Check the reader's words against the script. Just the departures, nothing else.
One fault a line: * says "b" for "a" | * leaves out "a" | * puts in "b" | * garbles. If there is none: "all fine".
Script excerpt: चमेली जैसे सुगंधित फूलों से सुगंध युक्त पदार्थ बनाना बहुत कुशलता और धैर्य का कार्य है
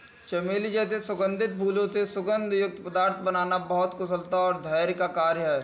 all fine